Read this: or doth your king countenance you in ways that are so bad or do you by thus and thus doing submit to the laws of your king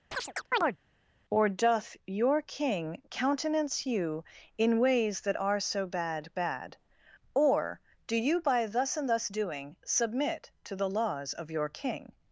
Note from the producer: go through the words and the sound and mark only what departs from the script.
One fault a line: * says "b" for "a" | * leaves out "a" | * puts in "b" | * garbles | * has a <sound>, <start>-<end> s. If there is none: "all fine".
* has a chirp, 0.1-0.8 s
* puts in "bad"